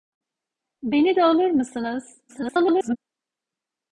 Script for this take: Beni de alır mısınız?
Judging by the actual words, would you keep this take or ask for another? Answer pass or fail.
fail